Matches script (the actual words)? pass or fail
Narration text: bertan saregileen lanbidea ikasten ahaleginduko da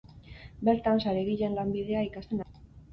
fail